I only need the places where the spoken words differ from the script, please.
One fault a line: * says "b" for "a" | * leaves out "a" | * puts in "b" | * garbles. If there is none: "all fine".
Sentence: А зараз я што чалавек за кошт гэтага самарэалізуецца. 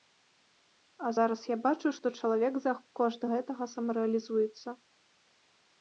* puts in "бачу"